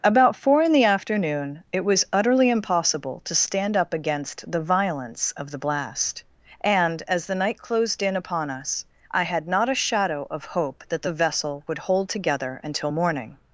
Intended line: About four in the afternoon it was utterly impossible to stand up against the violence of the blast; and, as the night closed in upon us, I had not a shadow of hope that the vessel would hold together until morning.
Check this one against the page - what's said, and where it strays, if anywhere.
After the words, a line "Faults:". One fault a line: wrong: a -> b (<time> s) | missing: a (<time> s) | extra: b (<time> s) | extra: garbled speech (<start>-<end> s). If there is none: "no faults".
About four in the afternoon it was utterly impossible to stand up against the violence of the blast; and, as the night closed in upon us, I had not a shadow of hope that the vessel would hold together until morning.
Faults:
no faults